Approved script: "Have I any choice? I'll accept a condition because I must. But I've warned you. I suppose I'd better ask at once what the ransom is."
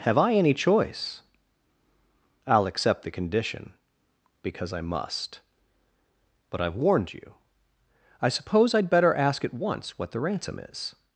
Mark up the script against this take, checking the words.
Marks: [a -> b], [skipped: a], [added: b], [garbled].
"Have I any choice? I'll accept [a -> the] condition because I must. But I've warned you. I suppose I'd better ask at once what the ransom is."